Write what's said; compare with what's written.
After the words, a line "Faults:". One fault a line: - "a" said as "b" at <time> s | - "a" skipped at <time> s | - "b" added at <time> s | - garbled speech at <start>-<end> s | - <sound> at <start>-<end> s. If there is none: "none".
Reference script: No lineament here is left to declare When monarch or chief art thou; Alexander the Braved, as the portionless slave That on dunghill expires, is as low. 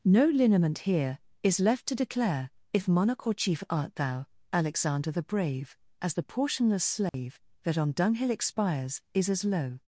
No lineament here is left to declare If monarch or chief art thou; Alexander the Brave, as the portionless slave That on dunghill expires, is as low.
Faults:
- "When" said as "If" at 2.7 s
- "Braved" said as "Brave" at 5.2 s
- dropout at 7.1-7.1 s